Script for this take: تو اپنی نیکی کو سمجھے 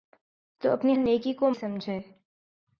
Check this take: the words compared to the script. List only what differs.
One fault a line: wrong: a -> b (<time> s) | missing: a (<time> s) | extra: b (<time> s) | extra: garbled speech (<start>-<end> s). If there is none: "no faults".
no faults